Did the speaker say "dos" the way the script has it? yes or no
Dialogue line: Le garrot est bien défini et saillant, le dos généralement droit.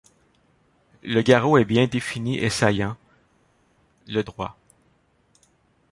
no